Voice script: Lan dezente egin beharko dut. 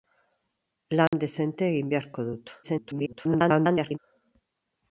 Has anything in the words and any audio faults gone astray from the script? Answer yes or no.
yes